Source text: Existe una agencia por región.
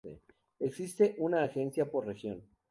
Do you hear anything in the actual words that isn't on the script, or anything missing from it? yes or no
no